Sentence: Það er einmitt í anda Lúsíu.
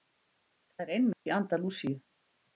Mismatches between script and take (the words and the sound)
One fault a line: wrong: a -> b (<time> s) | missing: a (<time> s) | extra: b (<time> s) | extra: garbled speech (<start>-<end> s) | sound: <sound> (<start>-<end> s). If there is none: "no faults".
sound: dropout (1.1-1.3 s)